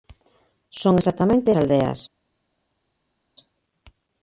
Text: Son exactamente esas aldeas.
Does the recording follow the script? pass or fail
fail